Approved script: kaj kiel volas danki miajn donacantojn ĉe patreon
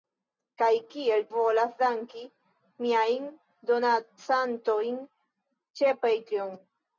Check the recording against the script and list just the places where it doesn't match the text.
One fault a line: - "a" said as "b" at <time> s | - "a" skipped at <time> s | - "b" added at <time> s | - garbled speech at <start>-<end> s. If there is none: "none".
none